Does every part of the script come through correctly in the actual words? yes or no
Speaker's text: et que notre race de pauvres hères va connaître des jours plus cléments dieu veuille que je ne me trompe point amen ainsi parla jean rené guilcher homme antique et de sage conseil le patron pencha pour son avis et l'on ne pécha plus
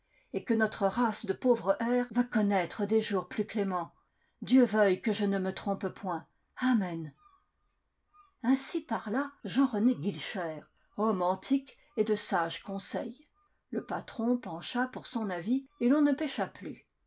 yes